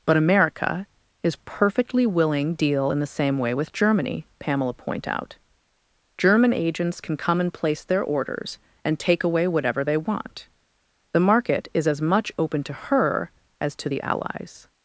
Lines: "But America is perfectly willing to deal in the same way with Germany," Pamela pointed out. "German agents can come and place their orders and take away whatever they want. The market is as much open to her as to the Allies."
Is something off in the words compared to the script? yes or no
yes